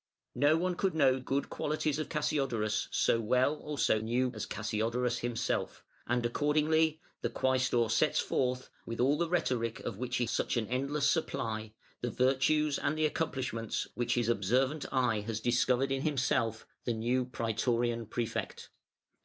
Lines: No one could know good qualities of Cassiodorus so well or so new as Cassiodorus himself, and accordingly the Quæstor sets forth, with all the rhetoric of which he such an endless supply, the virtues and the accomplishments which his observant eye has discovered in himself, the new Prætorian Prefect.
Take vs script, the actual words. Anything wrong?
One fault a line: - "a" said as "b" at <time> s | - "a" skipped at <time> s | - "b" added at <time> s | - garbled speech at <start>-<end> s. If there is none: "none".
none